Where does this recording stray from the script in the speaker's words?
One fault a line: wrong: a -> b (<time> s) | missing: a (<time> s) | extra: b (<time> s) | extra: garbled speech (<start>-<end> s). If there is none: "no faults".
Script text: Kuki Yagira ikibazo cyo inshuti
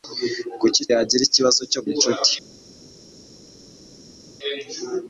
no faults